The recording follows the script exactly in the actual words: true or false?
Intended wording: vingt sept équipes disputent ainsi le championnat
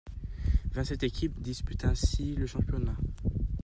true